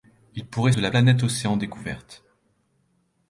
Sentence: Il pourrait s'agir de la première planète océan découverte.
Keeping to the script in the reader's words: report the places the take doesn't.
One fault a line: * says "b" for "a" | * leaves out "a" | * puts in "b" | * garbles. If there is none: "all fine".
* leaves out "s'agir"
* leaves out "première"